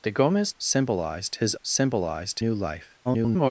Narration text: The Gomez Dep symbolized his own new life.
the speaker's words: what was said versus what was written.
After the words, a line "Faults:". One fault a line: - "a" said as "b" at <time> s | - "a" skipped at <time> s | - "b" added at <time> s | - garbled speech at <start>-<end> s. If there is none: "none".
The Gomez Symbolized his symbolized new life. [garbled]
Faults:
- "Dep" skipped at 0.5 s
- "own" said as "symbolized" at 1.6 s
- garbled speech at 3.0-3.5 s